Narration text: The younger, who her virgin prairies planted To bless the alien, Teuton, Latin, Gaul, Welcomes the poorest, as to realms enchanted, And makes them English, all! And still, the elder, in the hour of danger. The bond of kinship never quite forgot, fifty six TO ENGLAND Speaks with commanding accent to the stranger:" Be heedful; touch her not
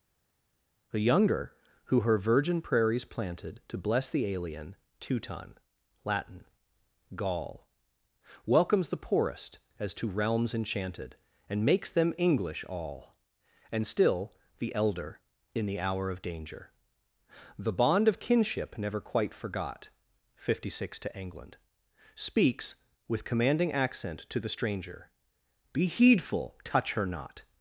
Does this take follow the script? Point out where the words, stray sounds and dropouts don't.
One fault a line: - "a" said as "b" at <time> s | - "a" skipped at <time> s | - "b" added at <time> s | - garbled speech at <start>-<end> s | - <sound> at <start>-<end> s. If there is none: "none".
none